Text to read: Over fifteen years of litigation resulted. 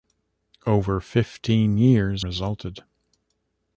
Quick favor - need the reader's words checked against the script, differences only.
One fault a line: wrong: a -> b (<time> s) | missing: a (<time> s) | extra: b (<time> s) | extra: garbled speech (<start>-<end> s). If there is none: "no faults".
missing: of litigation (2.2 s)